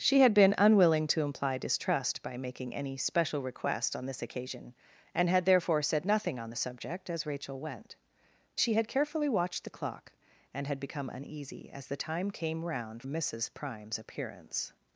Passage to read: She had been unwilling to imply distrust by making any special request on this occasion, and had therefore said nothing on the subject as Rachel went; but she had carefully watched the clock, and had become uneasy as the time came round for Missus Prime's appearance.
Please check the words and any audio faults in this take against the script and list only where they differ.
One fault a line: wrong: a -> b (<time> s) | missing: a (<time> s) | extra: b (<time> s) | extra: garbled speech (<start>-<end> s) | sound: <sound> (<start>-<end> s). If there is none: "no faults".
missing: but (8.0 s)
missing: for (13.0 s)